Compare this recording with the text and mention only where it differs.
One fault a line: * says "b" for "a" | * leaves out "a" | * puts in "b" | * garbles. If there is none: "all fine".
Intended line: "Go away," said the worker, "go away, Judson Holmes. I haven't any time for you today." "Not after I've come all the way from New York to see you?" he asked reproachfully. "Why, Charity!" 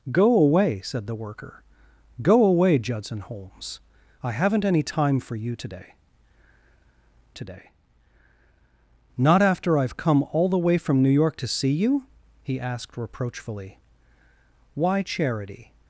* puts in "today"